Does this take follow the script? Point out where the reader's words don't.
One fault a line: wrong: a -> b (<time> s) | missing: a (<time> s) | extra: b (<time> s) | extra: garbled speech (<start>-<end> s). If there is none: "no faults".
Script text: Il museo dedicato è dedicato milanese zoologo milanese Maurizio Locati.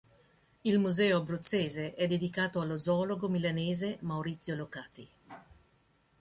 wrong: dedicato -> abruzzese (1.2 s)
wrong: milanese -> allo (2.6 s)